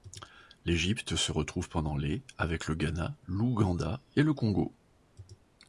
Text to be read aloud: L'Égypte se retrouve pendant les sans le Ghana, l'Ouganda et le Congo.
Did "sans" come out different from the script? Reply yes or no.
yes